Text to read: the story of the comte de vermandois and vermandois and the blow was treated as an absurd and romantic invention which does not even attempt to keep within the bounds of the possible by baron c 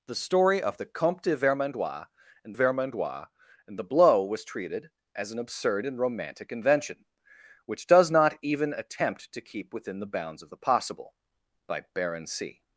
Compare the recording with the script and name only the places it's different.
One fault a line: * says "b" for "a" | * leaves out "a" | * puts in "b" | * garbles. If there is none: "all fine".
all fine